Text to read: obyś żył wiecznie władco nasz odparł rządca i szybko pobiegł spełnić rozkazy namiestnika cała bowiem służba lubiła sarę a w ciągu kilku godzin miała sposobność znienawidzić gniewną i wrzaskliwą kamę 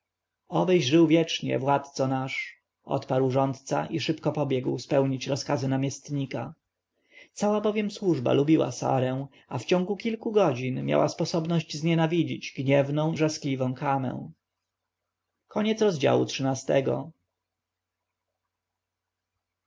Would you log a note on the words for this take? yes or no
yes